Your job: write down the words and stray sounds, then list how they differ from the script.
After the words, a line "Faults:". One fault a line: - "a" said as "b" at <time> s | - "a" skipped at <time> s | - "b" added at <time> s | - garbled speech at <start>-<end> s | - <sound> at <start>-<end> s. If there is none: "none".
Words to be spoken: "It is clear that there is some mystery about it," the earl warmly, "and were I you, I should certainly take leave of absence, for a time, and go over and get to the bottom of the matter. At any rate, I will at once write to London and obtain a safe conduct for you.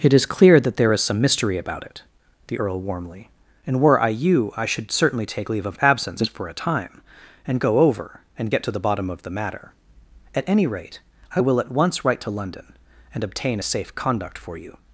"It is clear that there is some mystery about it," the earl warmly, "and were I you, I should certainly take leave of absence, for a time, and go over and get to the bottom of the matter. At any rate, I will at once write to London and obtain a safe conduct for you.
Faults:
none